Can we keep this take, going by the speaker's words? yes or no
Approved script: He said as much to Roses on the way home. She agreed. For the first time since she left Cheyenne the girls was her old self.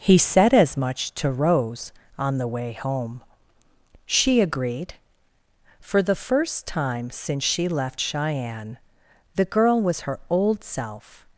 no